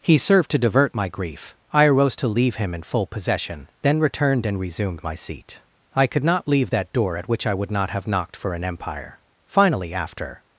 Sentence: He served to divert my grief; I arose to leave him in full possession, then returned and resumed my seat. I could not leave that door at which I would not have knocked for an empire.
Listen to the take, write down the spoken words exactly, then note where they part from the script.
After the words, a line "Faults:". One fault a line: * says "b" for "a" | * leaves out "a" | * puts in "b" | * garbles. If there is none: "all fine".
He served to divert my grief; I arose to leave him in full possession, then returned and resumed my seat. I could not leave that door at which I would not have knocked for an empire. Finally, after
Faults:
* puts in "Finally after"